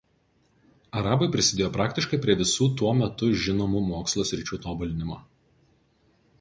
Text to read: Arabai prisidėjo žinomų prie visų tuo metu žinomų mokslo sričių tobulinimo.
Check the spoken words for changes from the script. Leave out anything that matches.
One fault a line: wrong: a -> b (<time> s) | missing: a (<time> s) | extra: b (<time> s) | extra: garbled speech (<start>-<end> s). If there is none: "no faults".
wrong: žinomų -> praktiškai (1.8 s)